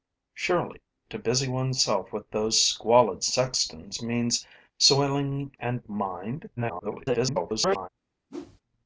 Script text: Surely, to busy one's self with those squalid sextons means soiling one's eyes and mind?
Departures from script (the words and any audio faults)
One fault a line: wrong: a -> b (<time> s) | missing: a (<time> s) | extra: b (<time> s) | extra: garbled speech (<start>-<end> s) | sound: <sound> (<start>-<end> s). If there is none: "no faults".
missing: one's eyes (5.5 s)
extra: garbled speech (6.6-7.9 s)
sound: whoosh (8.3-8.6 s)